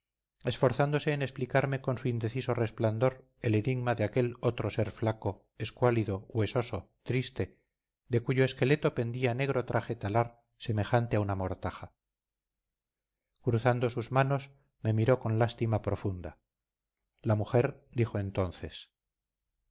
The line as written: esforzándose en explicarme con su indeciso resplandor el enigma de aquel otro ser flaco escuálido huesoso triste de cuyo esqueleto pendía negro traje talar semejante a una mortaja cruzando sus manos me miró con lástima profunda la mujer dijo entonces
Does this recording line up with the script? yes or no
yes